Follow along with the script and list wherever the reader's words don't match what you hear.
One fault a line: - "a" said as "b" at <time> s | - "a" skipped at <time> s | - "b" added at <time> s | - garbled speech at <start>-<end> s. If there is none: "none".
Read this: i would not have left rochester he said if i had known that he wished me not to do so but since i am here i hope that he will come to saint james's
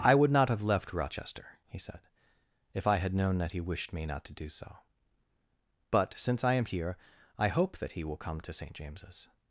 none